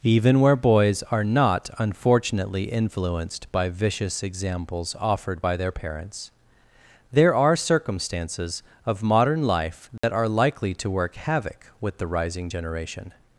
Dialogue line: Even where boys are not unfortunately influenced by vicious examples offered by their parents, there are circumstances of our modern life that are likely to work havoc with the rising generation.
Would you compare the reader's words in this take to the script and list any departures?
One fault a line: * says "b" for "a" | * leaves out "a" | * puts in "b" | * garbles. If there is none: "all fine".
* leaves out "our"